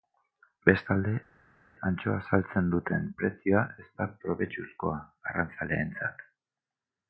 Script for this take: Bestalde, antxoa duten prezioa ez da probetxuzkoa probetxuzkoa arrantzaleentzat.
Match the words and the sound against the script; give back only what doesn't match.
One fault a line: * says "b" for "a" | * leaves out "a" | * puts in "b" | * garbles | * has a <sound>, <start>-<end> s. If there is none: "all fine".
* puts in "saltzen"
* leaves out "probetxuzkoa"